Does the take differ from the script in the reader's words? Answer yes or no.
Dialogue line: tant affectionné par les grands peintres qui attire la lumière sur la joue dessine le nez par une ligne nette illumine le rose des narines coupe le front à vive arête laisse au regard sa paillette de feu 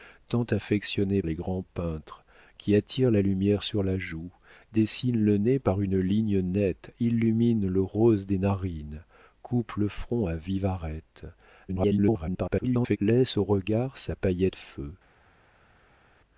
yes